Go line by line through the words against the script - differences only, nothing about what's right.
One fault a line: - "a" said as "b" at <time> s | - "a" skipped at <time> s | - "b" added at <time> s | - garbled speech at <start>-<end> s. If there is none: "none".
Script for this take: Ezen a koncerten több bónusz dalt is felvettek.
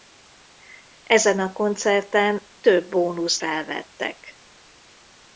- "dalt is" skipped at 3.4 s